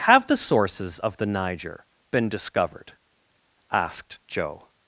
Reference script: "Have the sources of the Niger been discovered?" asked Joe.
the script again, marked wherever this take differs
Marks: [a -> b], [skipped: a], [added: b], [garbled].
"Have the sources of the Niger been discovered?" asked Joe.